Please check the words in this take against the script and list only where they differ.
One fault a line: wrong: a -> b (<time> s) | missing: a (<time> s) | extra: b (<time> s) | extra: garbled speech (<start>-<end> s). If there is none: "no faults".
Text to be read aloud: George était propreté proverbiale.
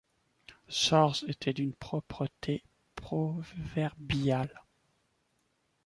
extra: d'une (1.5 s)